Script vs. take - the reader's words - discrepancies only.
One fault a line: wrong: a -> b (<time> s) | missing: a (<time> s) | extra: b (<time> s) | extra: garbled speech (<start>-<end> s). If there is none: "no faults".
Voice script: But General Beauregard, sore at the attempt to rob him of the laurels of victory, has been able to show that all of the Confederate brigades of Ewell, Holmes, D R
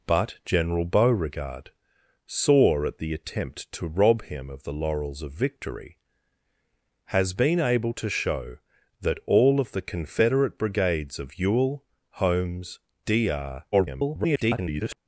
extra: garbled speech (13.7-15.0 s)